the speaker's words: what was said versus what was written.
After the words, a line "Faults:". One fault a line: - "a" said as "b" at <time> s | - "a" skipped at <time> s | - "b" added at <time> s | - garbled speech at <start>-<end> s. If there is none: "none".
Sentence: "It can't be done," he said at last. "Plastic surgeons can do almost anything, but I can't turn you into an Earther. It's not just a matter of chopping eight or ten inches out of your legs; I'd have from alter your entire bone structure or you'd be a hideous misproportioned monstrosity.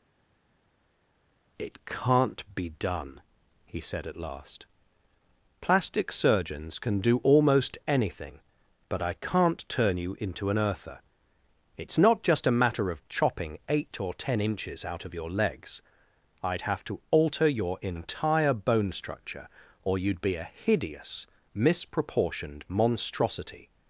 "It can't be done," he said at last. "Plastic surgeons can do almost anything, but I can't turn you into an Earther. It's not just a matter of chopping eight or ten inches out of your legs; I'd have to alter your entire bone structure or you'd be a hideous misproportioned monstrosity.
Faults:
- "from" said as "to" at 16.9 s